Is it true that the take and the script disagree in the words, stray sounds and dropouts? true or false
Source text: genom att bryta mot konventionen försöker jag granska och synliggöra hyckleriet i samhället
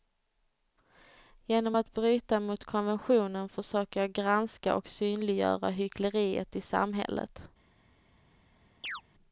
true